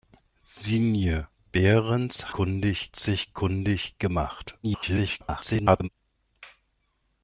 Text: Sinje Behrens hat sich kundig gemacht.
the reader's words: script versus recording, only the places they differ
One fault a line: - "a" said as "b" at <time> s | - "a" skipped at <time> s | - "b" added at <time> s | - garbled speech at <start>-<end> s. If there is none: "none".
- "hat" said as "kundig" at 2.3 s
- garbled speech at 4.6-5.9 s